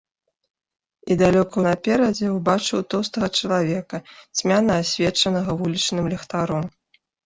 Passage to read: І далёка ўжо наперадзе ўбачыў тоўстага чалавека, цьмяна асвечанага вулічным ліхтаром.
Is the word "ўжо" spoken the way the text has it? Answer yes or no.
no